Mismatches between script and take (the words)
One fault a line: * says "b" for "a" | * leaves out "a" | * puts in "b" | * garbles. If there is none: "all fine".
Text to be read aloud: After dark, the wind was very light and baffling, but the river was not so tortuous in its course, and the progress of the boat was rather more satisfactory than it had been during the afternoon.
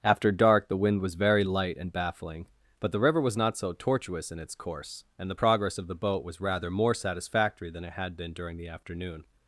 all fine